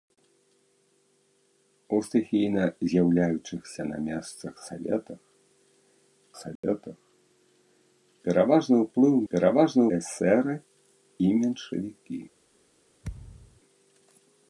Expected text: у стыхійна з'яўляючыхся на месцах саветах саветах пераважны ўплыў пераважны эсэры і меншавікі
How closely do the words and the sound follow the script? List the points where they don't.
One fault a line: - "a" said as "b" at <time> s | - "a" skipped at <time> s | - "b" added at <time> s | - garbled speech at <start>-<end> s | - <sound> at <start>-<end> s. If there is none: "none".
- dropout at 6.6-6.6 s
- thud at 13.0-13.6 s